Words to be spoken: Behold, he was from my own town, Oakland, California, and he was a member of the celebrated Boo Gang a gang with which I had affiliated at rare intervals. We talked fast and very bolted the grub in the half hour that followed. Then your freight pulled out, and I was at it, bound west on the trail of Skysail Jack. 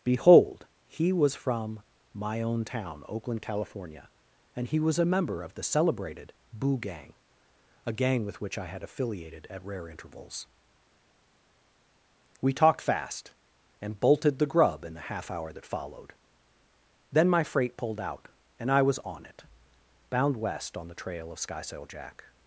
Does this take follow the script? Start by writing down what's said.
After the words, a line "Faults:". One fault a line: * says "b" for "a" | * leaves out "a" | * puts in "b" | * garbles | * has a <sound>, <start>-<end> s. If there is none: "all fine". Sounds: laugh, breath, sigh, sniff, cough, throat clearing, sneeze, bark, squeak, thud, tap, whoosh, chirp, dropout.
Behold, he was from my own town, Oakland, California, and he was a member of the celebrated Boo Gang a gang with which I had affiliated at rare intervals. We talked fast and bolted the grub in the half hour that followed. Then my freight pulled out, and I was on it, bound west on the trail of Skysail Jack.
Faults:
* leaves out "very"
* says "my" for "your"
* says "on" for "at"